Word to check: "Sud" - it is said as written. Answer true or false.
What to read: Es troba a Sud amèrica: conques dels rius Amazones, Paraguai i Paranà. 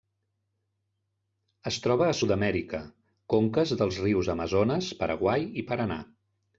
true